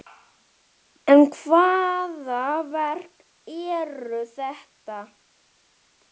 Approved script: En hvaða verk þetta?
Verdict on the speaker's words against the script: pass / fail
fail